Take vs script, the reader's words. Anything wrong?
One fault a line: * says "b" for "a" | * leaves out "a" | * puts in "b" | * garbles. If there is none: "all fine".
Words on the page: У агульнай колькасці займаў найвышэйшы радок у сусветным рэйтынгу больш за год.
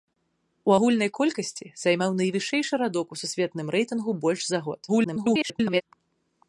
* garbles